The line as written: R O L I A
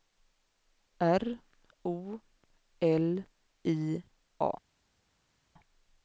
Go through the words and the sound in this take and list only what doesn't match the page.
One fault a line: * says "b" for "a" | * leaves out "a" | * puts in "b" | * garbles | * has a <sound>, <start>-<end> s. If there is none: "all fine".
all fine